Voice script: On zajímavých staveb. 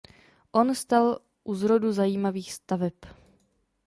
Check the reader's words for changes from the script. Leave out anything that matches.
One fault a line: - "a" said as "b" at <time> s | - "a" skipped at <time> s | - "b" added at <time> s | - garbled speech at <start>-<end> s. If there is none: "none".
- "stal u zrodu" added at 0.8 s